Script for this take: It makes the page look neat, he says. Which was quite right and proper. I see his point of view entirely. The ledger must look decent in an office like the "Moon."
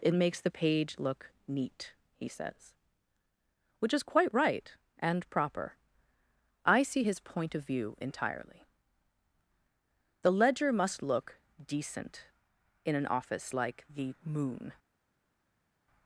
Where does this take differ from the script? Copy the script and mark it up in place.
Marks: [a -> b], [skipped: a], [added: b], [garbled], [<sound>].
It makes the page look neat, he says. Which [was -> is] quite right and proper. I see his point of view entirely. The ledger must look decent in an office like the "Moon."